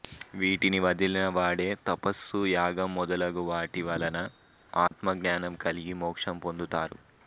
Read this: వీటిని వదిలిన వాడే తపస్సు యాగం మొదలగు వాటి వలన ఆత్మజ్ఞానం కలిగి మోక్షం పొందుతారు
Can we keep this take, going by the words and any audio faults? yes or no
no